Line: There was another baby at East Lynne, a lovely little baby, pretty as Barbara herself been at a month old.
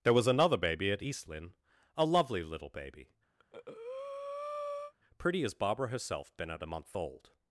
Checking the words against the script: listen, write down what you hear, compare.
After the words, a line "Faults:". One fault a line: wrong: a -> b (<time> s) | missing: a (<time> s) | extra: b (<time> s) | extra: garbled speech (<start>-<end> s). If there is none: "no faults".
There was another baby at East Lynne, a lovely little baby, pretty as Barbara herself been at a month old.
Faults:
no faults